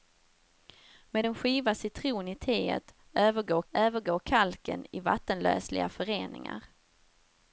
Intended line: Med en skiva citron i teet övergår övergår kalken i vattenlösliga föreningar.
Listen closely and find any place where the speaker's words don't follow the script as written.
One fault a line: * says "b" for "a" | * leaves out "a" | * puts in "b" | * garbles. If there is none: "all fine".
all fine